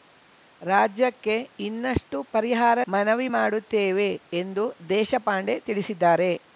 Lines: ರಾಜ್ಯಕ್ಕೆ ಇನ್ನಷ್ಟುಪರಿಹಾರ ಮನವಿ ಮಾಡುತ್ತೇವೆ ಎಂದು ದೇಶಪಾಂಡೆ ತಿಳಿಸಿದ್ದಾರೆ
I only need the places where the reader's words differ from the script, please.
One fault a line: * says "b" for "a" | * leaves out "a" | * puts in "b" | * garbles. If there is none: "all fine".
all fine